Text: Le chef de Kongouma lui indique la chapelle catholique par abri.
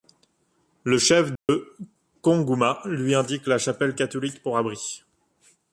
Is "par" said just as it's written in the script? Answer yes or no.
no